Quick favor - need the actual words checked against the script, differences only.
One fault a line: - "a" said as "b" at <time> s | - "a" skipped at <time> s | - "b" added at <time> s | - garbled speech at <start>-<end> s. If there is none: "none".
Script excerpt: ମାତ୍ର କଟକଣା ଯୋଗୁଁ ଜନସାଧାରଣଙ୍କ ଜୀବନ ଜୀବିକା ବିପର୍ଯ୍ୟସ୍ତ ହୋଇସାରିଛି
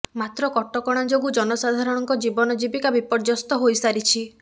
none